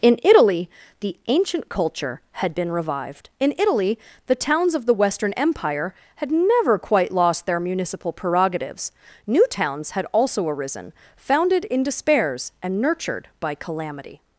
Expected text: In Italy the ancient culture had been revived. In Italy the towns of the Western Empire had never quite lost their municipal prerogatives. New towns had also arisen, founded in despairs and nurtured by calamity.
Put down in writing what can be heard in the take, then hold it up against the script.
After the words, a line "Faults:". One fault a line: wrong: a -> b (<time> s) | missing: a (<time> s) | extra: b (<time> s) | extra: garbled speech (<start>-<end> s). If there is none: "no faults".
In Italy the ancient culture had been revived. In Italy the towns of the Western Empire had never quite lost their municipal prerogatives. New towns had also arisen, founded in despairs and nurtured by calamity.
Faults:
no faults